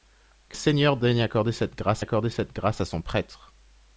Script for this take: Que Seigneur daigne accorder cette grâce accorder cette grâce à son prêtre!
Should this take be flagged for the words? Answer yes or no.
no